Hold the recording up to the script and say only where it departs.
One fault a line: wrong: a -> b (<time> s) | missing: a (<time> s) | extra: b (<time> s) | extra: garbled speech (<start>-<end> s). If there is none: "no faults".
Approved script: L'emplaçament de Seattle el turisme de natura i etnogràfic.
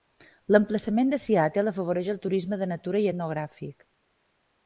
extra: afavoreix (1.7 s)